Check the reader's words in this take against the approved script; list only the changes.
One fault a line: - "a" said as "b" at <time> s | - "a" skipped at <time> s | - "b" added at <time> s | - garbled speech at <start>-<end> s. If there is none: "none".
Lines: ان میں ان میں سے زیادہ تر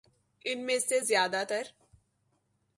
- "ان میں" skipped at 0.8 s